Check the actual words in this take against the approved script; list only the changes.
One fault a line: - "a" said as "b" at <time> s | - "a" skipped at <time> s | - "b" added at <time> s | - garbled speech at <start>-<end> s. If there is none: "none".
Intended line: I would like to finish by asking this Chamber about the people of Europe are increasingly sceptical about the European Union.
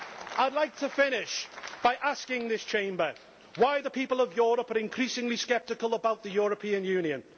- "about" said as "why" at 3.6 s